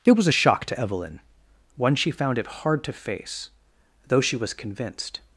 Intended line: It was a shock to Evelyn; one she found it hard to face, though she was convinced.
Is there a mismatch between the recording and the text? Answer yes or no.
no